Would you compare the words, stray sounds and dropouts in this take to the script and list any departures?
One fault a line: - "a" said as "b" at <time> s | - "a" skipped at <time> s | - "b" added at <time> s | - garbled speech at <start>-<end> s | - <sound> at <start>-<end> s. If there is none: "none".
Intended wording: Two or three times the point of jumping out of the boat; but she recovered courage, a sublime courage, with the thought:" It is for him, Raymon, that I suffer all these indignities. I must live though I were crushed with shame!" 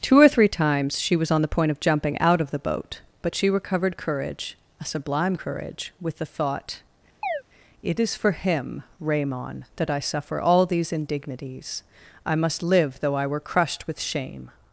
- "she was on" added at 1.0 s
- chirp at 7.2-7.4 s